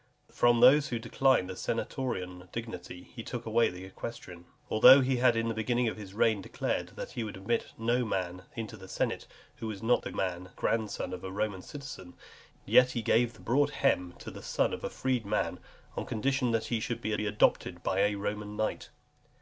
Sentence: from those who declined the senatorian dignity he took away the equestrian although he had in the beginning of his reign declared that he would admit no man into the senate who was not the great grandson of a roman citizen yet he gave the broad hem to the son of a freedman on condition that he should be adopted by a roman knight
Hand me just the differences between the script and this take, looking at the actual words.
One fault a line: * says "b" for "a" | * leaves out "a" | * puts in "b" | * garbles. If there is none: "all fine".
* says "man" for "great"
* puts in "be"